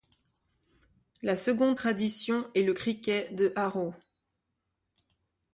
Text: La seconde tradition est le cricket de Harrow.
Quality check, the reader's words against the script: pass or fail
pass